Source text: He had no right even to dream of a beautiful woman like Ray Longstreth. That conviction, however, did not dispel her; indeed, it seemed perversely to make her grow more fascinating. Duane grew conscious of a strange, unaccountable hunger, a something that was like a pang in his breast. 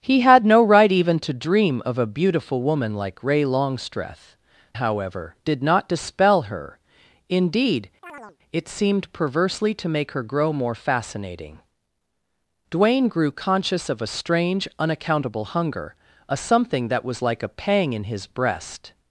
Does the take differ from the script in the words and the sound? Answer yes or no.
yes